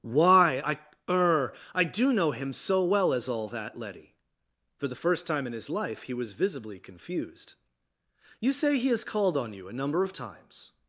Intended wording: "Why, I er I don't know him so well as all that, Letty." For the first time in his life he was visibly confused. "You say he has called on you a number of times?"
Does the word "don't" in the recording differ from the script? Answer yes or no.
yes